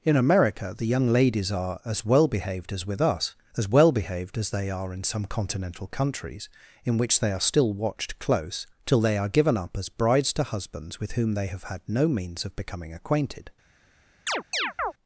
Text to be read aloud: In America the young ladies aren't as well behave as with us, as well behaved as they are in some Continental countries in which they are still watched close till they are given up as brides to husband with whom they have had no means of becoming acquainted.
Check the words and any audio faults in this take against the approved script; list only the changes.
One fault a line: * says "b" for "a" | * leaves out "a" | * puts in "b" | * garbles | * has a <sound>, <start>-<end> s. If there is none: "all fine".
* says "are" for "aren't"
* says "behaved" for "behave"
* says "husbands" for "husband"
* has a chirp, 14.3-14.9 s